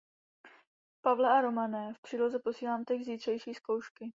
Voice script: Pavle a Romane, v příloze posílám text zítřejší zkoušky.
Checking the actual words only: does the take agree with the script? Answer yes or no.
yes